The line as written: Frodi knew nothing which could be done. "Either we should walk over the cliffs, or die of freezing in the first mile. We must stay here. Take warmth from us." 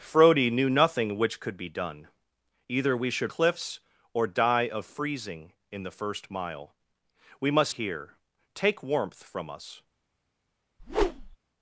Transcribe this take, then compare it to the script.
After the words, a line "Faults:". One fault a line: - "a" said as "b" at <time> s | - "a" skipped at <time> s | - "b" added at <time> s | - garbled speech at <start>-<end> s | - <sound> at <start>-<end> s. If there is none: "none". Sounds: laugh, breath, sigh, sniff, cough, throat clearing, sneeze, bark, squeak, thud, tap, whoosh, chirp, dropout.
Frodi knew nothing which could be done. "Either we should cliffs, or die of freezing in the first mile. We must here. Take warmth from us."
Faults:
- "walk over the" skipped at 3.3 s
- "stay" skipped at 7.7 s
- whoosh at 10.8-11.4 s